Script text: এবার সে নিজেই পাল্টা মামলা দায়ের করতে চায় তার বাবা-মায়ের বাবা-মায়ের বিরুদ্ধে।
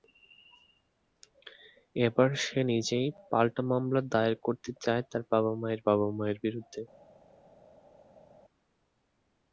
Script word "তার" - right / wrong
right